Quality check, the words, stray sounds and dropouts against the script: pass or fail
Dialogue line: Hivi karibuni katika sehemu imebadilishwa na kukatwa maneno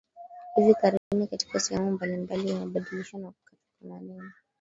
fail